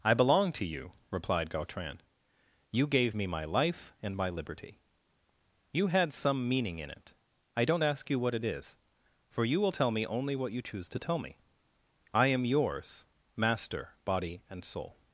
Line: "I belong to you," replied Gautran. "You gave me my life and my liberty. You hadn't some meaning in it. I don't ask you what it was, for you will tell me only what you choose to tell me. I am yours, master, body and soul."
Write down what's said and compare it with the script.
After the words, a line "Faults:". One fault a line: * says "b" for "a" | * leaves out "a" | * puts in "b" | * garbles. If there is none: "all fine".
"I belong to you," replied Gautran. "You gave me my life and my liberty. You had some meaning in it. I don't ask you what it is, for you will tell me only what you choose to tell me. I am yours, master, body and soul."
Faults:
* says "had" for "hadn't"
* says "is" for "was"